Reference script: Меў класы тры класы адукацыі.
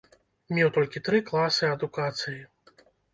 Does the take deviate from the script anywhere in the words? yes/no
yes